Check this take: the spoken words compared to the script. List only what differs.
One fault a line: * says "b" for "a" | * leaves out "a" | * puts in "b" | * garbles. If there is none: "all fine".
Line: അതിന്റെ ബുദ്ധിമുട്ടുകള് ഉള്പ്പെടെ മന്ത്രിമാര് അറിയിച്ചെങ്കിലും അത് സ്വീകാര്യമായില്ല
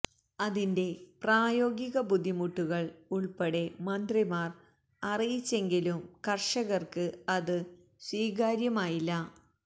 * puts in "പ്രായോഗിക"
* puts in "കര്ഷകര്ക്ക്"